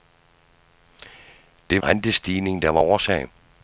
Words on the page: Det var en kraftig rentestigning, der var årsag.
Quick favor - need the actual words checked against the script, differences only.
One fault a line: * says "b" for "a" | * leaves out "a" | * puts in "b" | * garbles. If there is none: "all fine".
* leaves out "var en kraftig"